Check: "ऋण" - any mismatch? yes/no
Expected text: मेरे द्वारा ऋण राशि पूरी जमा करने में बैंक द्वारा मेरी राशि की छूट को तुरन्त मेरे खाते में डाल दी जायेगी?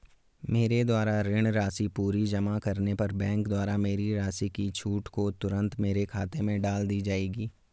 no